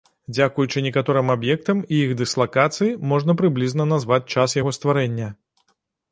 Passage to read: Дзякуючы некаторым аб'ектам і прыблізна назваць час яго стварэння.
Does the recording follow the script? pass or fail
fail